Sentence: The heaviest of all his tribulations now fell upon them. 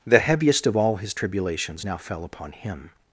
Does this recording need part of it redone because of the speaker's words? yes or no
yes